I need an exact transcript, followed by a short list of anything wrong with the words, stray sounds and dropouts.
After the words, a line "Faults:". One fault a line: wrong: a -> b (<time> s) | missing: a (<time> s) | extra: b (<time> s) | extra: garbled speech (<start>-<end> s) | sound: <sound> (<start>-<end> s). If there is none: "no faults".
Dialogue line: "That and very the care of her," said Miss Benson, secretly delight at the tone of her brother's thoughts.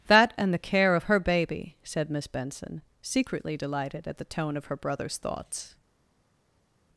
"That and the care of her baby," said Miss Benson, secretly delighted at the tone of her brother's thoughts.
Faults:
missing: very (0.5 s)
extra: baby (1.2 s)
wrong: delight -> delighted (3.5 s)